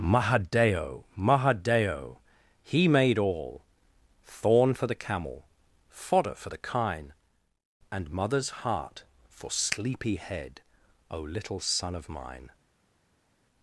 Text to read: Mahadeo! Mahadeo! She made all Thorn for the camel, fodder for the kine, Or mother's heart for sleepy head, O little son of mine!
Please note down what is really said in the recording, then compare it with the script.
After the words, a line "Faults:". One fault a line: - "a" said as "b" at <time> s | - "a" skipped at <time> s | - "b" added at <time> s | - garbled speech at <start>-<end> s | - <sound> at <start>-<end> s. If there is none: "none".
Mahadeo! Mahadeo! He made all Thorn for the camel, fodder for the kine, And mother's heart for sleepy head, O little son of mine!
Faults:
- "She" said as "He" at 2.6 s
- "Or" said as "And" at 7.9 s